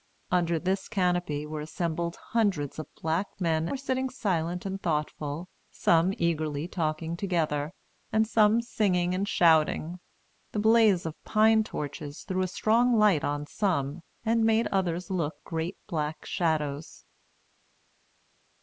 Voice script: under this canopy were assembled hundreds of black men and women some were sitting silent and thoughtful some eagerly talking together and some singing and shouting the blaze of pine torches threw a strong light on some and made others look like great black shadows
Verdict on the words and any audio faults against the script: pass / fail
fail